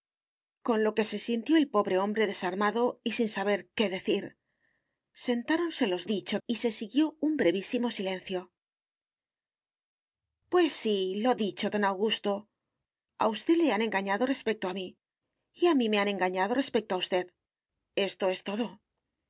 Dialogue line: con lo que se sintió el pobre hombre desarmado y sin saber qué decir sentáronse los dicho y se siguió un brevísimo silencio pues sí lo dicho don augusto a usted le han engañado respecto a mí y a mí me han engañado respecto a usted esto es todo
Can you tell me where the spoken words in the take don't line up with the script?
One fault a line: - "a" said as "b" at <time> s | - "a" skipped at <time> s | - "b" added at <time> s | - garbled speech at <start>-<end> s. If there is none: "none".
none